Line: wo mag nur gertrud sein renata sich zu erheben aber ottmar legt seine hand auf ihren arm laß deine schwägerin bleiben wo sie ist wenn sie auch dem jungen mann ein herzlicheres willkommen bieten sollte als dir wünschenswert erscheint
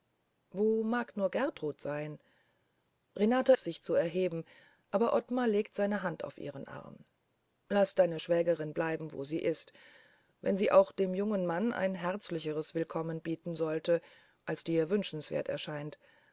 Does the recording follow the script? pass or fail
pass